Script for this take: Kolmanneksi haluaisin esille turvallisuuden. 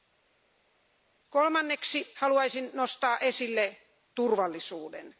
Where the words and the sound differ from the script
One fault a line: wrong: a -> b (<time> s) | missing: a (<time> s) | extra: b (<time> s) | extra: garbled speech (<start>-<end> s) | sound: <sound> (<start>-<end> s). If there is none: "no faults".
extra: nostaa (2.7 s)